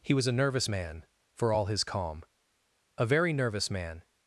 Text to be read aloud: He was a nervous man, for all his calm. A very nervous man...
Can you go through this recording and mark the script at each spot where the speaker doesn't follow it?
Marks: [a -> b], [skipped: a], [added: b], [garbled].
He was a nervous man, for all his calm. A very nervous man...